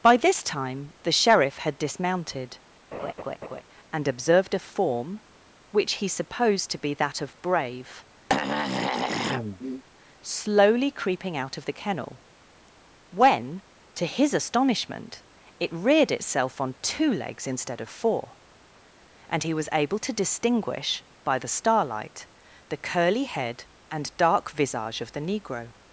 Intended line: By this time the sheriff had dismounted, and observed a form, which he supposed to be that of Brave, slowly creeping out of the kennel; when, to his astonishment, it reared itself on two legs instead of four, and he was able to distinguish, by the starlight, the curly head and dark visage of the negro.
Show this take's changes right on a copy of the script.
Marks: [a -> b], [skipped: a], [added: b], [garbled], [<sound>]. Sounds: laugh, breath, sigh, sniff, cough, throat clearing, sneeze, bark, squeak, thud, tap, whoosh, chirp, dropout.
By this time the sheriff had dismounted, [laugh] and observed a form, which he supposed to be that of Brave, [throat clearing] slowly creeping out of the kennel; when, to his astonishment, it reared itself on two legs instead of four, and he was able to distinguish, by the starlight, the curly head and dark visage of the negro.